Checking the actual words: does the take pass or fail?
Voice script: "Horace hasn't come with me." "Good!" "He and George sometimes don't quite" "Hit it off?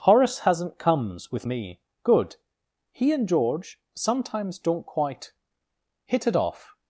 fail